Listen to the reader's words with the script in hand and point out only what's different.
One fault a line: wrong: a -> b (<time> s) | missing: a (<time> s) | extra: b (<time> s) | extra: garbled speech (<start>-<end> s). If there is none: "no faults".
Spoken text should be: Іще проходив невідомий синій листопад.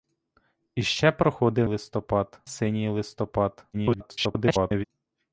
wrong: невідомий -> листопад (1.6 s)
extra: garbled speech (3.7-4.8 s)